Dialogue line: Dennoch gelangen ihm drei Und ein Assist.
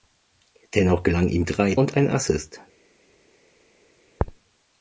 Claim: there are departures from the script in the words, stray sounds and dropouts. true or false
false